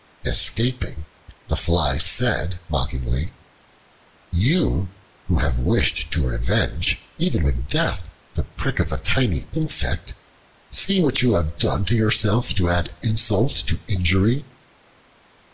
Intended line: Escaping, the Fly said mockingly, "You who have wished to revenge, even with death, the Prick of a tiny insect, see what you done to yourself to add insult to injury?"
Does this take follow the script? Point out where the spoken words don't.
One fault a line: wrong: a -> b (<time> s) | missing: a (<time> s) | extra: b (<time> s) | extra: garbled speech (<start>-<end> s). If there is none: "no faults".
extra: have (11.3 s)